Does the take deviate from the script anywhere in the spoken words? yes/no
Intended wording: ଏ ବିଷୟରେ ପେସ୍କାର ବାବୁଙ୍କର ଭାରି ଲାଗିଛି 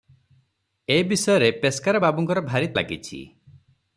no